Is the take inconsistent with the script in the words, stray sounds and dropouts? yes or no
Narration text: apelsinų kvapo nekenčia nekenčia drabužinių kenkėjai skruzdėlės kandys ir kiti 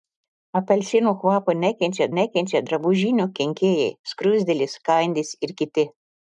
no